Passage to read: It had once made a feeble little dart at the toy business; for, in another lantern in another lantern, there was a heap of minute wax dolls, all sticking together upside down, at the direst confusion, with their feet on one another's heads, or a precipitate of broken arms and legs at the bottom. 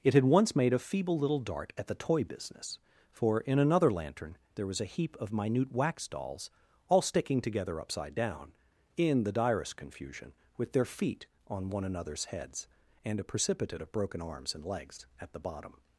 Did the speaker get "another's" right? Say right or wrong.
right